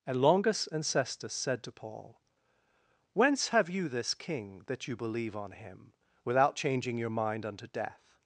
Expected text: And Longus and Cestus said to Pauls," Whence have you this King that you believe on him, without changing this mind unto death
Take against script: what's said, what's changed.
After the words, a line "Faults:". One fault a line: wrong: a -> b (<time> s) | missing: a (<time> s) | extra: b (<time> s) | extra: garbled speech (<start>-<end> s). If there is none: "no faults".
And Longus and Cestus said to Paul," Whence have you this King that you believe on him, without changing your mind unto death
Faults:
wrong: Pauls -> Paul (1.7 s)
wrong: this -> your (7.0 s)